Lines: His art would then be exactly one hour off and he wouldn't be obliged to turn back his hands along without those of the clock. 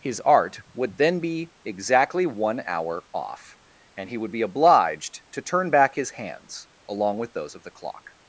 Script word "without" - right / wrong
wrong